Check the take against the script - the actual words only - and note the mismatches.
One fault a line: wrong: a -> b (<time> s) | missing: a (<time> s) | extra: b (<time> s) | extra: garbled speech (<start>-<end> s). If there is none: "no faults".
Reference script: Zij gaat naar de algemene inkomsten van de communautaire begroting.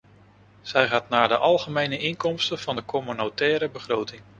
no faults